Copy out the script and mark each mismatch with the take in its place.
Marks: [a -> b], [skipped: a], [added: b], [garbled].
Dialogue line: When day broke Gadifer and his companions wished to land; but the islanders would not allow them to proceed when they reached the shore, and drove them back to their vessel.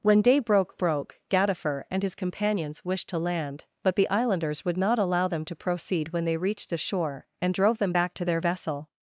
When day broke [added: broke] Gadifer and his companions wished to land; but the islanders would not allow them to proceed when they reached the shore, and drove them back to their vessel.